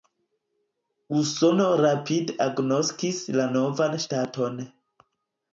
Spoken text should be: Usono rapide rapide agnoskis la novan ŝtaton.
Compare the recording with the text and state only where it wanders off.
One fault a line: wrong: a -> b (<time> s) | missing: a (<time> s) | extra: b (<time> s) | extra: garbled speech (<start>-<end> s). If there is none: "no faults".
missing: rapide (2.4 s)